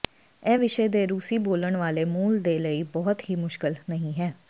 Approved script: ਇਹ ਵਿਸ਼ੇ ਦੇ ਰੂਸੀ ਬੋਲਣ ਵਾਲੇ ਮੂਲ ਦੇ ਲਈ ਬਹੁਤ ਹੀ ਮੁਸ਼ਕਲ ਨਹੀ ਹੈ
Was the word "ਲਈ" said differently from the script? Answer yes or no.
no